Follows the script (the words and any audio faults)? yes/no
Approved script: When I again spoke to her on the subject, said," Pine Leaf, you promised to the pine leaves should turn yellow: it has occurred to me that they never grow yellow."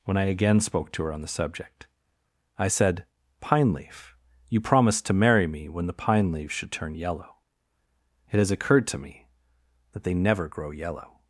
no